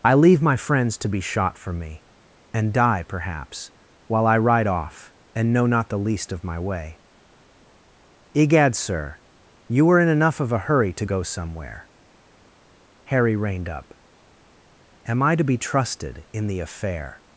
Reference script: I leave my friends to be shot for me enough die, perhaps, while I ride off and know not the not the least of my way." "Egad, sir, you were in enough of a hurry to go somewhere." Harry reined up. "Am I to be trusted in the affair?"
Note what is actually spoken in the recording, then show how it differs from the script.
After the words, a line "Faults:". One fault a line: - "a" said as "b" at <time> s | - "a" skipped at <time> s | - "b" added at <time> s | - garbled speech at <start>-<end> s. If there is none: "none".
I leave my friends to be shot for me and die, perhaps, while I ride off and know not the least of my way." "Egad, sir, you were in enough of a hurry to go somewhere." Harry reined up. "Am I to be trusted in the affair?"
Faults:
- "enough" said as "and" at 2.5 s
- "not the" skipped at 6.0 s